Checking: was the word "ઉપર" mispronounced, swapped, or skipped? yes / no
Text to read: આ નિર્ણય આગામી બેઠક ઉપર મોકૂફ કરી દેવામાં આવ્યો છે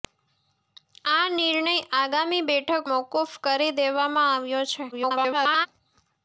yes